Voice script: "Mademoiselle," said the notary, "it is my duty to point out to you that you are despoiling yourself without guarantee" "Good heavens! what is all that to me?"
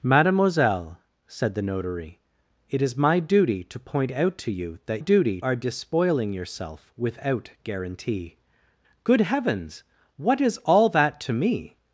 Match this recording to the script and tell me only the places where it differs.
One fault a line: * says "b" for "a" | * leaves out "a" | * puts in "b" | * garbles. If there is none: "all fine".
* says "duty" for "you"